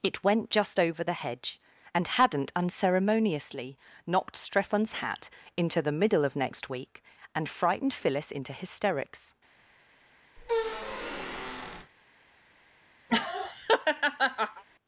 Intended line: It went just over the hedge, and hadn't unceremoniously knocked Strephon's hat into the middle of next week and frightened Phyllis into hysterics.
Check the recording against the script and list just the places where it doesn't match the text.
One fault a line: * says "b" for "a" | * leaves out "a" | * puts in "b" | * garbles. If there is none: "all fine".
all fine